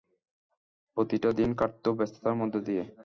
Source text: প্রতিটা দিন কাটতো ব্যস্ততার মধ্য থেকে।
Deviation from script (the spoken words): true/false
true